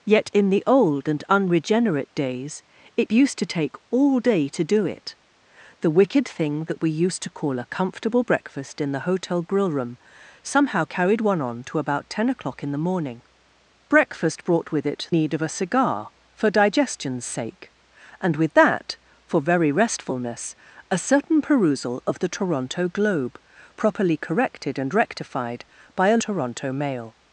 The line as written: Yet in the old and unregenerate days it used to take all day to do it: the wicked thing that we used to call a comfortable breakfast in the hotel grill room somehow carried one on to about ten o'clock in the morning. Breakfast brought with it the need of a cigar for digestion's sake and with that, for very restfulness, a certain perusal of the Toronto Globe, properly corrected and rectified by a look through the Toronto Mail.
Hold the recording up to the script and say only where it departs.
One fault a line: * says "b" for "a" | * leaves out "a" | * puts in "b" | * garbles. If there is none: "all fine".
* leaves out "the"
* leaves out "look through the"